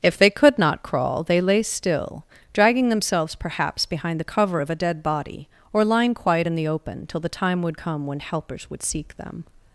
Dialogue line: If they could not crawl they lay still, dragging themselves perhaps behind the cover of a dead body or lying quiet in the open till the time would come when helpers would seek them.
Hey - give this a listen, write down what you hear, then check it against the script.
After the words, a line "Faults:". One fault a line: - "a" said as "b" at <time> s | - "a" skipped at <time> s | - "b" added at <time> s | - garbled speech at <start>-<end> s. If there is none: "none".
If they could not crawl they lay still, dragging themselves perhaps behind the cover of a dead body or lying quiet in the open till the time would come when helpers would seek them.
Faults:
none